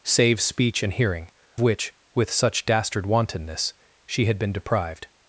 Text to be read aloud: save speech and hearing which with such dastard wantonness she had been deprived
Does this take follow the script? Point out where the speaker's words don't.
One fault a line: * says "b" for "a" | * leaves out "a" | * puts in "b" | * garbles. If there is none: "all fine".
all fine